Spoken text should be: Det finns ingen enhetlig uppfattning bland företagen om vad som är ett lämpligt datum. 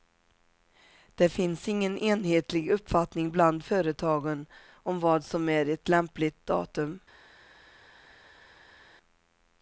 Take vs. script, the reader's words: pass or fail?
pass